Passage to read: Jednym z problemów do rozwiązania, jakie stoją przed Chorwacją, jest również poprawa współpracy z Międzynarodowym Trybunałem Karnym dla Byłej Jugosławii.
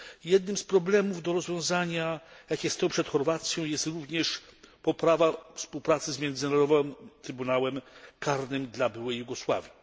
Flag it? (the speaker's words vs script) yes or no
no